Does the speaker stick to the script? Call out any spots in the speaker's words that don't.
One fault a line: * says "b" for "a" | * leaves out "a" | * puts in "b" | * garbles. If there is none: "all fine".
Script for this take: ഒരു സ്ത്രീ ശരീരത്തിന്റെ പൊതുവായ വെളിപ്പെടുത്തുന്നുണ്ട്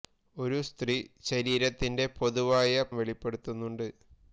all fine